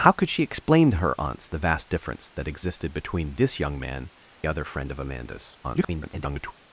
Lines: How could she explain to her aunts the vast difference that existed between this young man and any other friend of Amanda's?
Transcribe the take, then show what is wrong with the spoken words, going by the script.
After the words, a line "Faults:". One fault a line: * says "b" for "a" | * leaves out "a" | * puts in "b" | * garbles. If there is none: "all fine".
How could she explain to her aunts the vast difference that existed between this young man other friend of Amanda's? [garbled]
Faults:
* leaves out "and any"
* garbles